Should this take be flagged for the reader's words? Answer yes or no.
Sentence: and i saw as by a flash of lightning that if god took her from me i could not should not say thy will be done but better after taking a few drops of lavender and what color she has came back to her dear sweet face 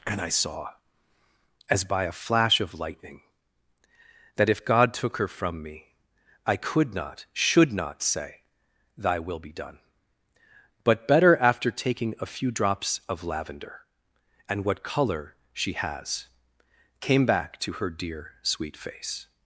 no